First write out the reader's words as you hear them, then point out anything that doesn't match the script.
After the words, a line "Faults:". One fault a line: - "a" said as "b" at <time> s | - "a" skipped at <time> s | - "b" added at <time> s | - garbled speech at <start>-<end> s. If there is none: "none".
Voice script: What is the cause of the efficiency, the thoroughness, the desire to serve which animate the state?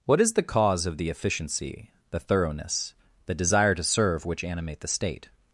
What is the cause of the efficiency, the thoroughness, the desire to serve which animate the state?
Faults:
none